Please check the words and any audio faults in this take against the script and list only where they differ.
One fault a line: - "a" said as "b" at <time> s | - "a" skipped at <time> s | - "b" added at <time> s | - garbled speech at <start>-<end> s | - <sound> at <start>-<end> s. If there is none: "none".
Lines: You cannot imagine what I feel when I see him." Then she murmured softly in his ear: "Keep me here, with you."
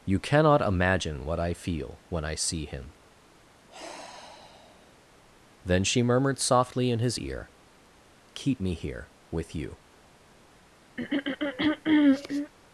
- sigh at 3.6-4.9 s
- throat clearing at 11.0-12.5 s